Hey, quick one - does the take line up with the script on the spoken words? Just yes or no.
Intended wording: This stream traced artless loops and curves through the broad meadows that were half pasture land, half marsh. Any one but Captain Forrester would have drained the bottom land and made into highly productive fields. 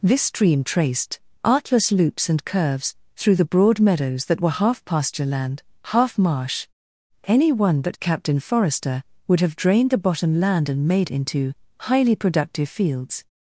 yes